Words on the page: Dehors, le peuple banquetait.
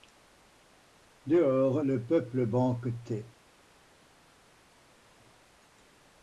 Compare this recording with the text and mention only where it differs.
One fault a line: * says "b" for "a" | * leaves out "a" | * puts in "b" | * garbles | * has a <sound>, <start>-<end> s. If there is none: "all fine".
all fine